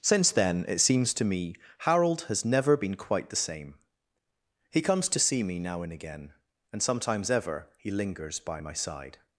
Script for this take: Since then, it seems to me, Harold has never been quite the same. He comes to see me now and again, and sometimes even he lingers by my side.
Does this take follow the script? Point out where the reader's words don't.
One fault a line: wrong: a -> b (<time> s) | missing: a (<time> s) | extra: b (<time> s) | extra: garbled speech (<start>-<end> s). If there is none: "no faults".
wrong: even -> ever (7.3 s)